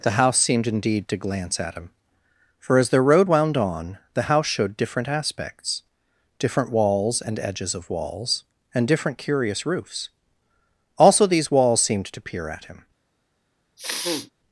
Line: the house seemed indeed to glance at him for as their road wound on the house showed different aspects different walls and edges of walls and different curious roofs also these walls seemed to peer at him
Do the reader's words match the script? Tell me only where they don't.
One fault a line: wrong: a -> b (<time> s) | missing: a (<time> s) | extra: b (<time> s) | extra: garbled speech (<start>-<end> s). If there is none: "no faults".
no faults